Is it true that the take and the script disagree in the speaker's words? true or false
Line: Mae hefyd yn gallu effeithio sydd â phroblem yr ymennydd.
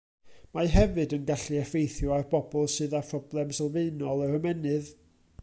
true